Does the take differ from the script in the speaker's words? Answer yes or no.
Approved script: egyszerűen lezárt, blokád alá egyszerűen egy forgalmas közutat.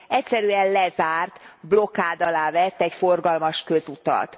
yes